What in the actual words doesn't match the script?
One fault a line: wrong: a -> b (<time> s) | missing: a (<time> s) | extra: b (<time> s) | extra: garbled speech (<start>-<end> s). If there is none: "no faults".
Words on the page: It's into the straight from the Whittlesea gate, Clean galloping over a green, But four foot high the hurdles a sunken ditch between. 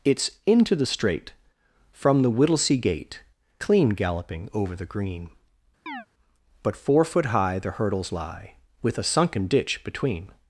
wrong: a -> the (4.7 s)
extra: lie With (8.1 s)